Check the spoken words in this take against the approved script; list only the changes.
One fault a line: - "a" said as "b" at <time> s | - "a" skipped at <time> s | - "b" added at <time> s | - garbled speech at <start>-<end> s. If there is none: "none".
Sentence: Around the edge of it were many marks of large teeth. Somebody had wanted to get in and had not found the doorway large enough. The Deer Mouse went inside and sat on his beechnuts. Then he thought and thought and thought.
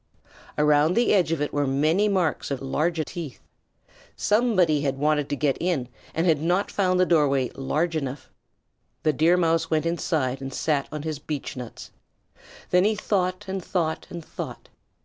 none